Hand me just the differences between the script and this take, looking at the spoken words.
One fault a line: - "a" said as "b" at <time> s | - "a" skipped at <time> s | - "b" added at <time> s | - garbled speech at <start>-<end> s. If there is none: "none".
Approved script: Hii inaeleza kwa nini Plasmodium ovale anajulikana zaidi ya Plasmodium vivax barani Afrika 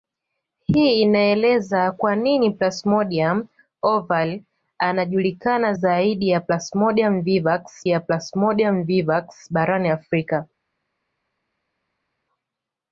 - "ya Plasmodium vivax" added at 7.9 s